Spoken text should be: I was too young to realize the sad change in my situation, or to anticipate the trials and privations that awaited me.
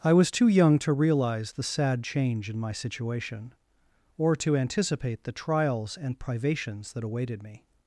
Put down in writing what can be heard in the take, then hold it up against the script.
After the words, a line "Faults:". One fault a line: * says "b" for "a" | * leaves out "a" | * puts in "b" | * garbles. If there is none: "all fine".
I was too young to realize the sad change in my situation, or to anticipate the trials and privations that awaited me.
Faults:
all fine